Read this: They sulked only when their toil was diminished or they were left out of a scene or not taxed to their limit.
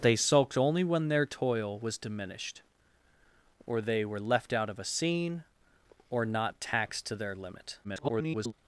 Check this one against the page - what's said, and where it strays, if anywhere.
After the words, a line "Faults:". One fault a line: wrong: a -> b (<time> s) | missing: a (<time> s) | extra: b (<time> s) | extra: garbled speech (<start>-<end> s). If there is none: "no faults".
They sulked only when their toil was diminished or they were left out of a scene or not taxed to their limit. [garbled]
Faults:
extra: garbled speech (7.8-8.5 s)